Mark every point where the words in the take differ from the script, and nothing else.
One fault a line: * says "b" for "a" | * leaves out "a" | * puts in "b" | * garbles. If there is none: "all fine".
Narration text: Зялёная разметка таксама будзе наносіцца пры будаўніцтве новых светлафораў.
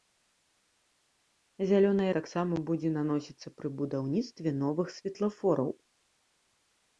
* leaves out "разметка"